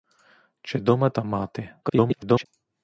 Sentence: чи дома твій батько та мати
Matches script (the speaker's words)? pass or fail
fail